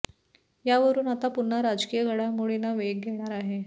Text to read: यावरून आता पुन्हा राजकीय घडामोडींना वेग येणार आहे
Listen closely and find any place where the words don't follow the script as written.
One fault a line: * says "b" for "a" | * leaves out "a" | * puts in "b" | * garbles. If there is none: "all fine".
all fine